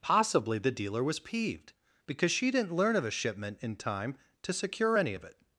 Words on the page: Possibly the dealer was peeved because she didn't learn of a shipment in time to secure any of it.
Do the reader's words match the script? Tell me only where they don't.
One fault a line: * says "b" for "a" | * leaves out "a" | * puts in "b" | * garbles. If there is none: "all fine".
all fine